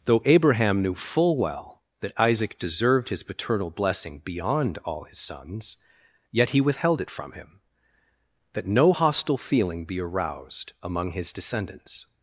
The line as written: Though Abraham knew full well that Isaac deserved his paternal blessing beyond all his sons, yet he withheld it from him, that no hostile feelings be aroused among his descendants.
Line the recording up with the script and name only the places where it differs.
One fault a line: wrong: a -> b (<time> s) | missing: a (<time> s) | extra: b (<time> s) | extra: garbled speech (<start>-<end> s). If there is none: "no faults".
wrong: feelings -> feeling (9.4 s)